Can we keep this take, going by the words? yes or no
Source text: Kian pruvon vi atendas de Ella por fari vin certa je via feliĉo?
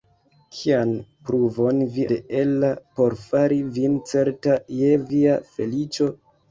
no